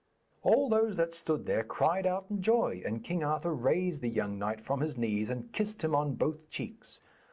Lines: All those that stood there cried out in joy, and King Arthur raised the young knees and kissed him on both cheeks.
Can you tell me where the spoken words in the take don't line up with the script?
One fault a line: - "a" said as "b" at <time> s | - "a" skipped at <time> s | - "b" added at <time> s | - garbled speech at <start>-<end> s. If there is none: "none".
- "knight from his" added at 4.4 s